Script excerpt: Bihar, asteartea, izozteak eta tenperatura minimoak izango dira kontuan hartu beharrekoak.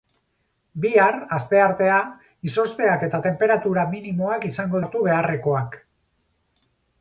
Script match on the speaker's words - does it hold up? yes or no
no